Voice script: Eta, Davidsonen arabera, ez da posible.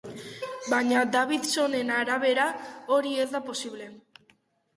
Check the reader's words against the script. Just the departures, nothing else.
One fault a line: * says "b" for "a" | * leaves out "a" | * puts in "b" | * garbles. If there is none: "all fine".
* says "Baina" for "Eta"
* puts in "hori"